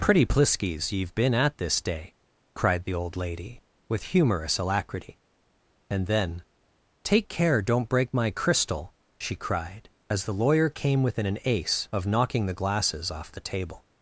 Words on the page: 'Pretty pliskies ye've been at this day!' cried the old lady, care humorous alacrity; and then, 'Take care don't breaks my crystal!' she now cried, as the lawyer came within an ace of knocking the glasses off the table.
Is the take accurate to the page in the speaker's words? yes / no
no